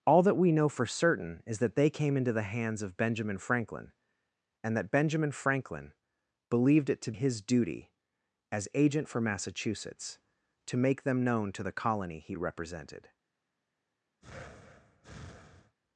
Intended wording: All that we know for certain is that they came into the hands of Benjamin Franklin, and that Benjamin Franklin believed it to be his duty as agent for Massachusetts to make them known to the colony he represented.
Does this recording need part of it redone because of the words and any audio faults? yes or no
yes